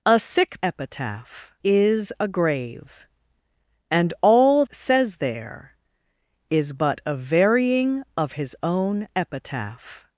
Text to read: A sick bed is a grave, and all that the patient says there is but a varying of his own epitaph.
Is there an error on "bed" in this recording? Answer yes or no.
yes